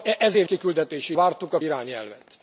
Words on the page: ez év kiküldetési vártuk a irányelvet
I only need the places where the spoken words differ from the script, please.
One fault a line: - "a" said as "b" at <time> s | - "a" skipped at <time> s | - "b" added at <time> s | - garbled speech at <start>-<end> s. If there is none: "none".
none